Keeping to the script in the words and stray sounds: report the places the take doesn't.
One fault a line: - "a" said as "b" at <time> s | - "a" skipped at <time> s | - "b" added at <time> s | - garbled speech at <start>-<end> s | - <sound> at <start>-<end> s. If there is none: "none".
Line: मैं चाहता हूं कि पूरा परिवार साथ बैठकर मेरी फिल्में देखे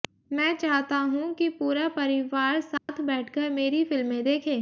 - dropout at 2.8-2.9 s